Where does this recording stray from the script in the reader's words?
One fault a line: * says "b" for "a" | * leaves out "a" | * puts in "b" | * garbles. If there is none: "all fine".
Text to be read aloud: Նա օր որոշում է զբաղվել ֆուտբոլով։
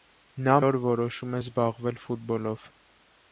all fine